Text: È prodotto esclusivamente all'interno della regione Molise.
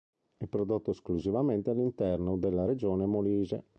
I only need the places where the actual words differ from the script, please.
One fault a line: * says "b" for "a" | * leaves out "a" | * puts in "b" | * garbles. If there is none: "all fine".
all fine